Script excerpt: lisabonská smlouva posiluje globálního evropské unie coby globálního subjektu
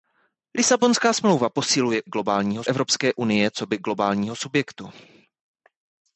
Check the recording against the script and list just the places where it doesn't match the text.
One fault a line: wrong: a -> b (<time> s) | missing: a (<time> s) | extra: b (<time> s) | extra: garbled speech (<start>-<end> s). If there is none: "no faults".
no faults